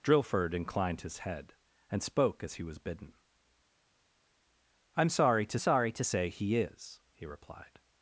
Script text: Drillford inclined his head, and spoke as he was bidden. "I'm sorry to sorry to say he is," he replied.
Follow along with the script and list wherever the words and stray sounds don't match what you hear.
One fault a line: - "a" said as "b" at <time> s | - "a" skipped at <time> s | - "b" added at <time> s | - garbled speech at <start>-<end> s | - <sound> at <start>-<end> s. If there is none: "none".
none